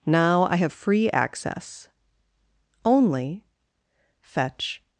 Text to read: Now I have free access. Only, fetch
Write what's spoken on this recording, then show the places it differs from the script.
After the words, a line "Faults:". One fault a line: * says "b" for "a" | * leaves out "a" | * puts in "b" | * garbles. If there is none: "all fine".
Now I have free access. Only, fetch
Faults:
all fine